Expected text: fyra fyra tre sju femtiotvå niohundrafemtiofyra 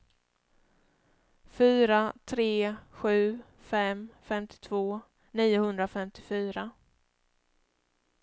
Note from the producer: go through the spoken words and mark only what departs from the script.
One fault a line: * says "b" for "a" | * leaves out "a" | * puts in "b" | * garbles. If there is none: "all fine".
* leaves out "fyra"
* puts in "fem"